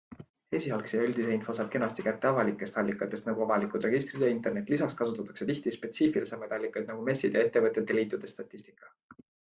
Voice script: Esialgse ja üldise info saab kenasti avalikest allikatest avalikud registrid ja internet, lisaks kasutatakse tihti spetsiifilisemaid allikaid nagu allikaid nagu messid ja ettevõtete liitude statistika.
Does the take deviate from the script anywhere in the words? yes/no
yes